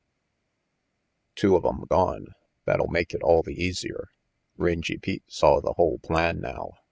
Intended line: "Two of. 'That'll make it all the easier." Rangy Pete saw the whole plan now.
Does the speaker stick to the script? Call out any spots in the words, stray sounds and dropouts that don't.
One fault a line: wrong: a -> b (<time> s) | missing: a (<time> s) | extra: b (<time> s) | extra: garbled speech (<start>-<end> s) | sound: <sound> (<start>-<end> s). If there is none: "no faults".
extra: em gone (1.7 s)